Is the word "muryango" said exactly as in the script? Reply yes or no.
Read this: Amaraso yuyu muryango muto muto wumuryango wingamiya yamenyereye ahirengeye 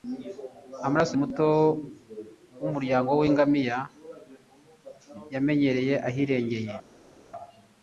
no